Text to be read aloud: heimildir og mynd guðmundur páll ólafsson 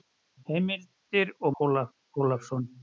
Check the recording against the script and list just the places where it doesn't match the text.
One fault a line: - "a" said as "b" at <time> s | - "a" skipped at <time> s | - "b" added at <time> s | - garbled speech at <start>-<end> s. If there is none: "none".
- "mynd guðmundur páll" skipped at 1.5 s